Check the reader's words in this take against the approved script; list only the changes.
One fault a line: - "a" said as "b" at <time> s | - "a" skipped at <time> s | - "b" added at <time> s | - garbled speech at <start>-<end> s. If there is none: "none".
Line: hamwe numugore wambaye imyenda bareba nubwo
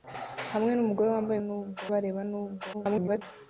- "imyenda" said as "nubwo" at 1.5 s
- garbled speech at 2.7-3.2 s